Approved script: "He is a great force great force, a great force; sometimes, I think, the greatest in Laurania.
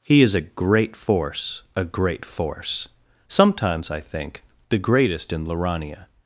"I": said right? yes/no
yes